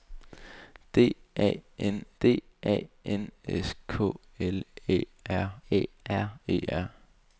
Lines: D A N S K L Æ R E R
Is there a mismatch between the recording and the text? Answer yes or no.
yes